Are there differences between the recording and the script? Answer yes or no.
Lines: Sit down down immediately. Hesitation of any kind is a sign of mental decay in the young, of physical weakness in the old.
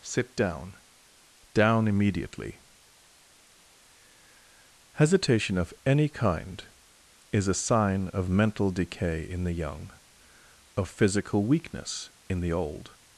no